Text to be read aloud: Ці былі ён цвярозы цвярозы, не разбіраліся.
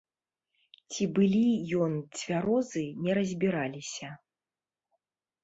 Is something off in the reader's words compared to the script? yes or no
yes